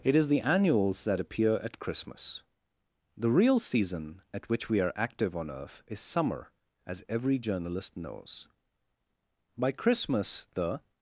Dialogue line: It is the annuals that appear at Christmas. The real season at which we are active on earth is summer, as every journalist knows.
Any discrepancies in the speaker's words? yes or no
yes